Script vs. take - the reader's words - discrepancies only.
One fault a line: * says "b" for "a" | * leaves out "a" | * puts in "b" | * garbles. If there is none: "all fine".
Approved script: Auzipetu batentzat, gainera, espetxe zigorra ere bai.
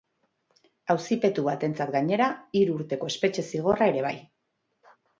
* puts in "hiru urteko"